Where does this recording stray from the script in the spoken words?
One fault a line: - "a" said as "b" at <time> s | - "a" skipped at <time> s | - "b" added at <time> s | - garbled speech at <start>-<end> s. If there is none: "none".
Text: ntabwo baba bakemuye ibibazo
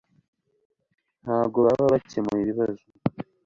none